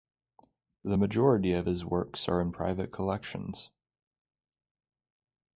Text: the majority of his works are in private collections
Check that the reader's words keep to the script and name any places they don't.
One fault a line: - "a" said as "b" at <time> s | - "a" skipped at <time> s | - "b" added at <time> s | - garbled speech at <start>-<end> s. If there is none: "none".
none